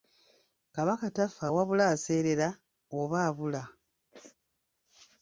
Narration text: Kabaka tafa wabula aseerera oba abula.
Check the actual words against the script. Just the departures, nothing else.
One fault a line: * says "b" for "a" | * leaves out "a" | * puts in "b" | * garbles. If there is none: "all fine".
all fine